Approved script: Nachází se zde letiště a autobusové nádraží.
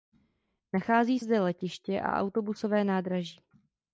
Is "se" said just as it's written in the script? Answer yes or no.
no